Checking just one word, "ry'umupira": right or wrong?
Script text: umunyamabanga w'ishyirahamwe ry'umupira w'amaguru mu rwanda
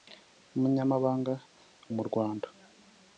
wrong